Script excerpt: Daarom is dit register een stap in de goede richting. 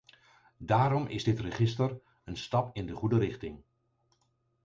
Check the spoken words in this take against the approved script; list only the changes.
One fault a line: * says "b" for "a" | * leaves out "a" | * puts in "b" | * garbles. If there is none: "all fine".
all fine